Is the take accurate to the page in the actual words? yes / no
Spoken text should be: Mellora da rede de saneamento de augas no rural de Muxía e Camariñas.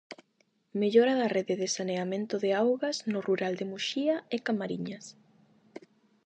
yes